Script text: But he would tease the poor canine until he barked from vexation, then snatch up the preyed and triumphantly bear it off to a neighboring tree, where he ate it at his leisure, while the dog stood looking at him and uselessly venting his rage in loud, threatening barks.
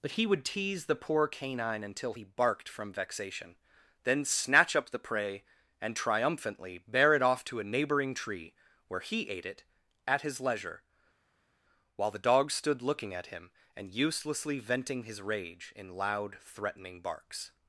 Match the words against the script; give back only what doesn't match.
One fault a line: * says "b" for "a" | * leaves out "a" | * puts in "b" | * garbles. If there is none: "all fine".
* says "prey" for "preyed"